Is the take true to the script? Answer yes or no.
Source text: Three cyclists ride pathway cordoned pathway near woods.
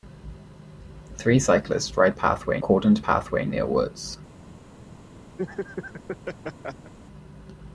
yes